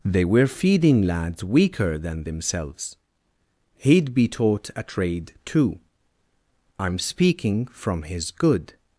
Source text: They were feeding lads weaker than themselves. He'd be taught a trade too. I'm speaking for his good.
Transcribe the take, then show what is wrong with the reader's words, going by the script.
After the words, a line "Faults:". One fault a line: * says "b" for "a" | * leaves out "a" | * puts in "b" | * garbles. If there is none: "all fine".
They were feeding lads weaker than themselves. He'd be taught a trade too. I'm speaking from his good.
Faults:
* says "from" for "for"